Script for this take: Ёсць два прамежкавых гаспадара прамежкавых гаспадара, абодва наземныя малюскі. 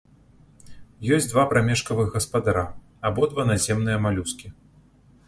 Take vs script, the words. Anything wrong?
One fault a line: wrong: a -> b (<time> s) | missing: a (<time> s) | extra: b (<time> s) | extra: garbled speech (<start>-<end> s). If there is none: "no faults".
missing: прамежкавых гаспадара (2.6 s)